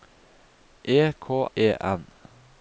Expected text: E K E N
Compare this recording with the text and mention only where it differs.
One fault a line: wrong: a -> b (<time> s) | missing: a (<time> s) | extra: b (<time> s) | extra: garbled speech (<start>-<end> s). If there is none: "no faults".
no faults